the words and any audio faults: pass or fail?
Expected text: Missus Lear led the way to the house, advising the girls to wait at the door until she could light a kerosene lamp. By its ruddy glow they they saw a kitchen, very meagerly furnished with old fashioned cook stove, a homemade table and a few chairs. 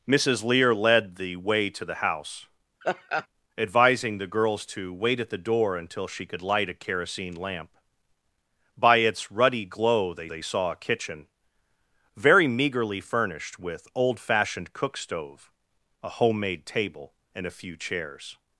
fail